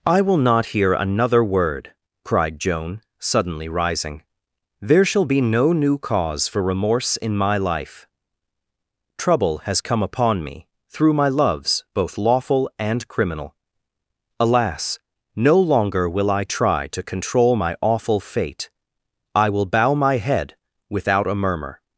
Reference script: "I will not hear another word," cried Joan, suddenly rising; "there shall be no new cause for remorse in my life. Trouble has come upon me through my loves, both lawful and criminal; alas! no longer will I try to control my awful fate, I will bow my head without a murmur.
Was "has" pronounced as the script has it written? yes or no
yes